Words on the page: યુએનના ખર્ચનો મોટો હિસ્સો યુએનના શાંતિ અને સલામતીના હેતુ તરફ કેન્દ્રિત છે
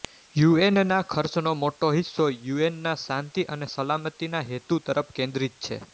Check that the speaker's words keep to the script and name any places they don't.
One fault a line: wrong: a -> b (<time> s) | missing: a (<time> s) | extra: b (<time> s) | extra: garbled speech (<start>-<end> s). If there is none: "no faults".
no faults